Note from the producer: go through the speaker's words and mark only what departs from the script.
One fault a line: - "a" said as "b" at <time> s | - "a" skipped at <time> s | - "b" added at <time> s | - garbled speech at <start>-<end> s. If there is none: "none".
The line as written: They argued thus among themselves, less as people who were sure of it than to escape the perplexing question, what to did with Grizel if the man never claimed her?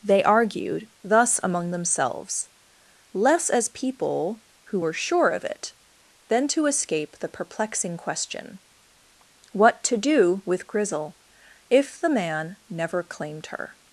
- "did" said as "do" at 10.0 s